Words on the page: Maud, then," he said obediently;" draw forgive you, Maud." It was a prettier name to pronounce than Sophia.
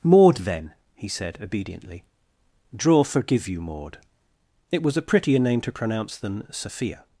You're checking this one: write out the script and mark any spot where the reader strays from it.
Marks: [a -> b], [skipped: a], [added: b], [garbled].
Maud, then," he said obediently;" draw forgive you, Maud." It was a prettier name to pronounce than Sophia.